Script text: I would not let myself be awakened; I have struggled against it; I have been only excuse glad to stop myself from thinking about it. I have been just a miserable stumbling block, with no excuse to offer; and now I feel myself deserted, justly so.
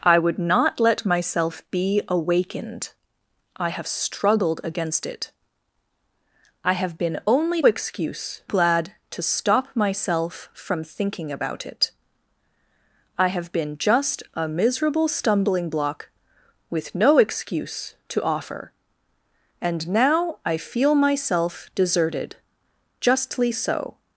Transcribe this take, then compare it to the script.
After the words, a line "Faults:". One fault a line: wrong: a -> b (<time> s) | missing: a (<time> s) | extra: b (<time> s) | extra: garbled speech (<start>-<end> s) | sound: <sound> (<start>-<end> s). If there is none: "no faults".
I would not let myself be awakened; I have struggled against it; I have been only excuse glad to stop myself from thinking about it. I have been just a miserable stumbling block, with no excuse to offer; and now I feel myself deserted, justly so.
Faults:
no faults